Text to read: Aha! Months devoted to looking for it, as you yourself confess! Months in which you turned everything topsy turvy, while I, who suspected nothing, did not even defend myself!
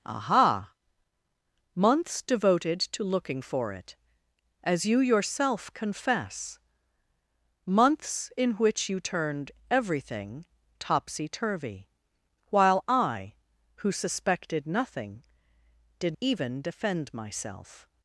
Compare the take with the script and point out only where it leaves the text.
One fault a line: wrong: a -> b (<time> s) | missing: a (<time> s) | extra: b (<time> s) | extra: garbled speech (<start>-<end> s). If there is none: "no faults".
missing: not (16.2 s)